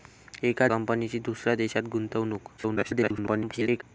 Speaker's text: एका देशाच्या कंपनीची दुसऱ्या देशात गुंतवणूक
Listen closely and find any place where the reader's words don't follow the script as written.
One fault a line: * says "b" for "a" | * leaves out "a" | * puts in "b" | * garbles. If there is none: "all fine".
* leaves out "देशाच्या"
* garbles